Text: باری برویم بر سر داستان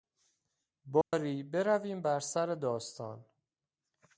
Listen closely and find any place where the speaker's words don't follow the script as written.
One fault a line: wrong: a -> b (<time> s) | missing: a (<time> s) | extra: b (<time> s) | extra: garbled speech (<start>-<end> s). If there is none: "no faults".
no faults